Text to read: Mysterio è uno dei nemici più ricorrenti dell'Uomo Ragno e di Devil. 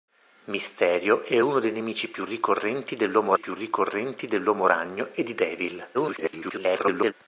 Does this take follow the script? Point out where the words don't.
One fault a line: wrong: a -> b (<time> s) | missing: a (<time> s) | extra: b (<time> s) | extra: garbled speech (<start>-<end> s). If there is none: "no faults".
extra: più ricorrenti dell'Uomo (3.4 s)
extra: garbled speech (5.9-7.1 s)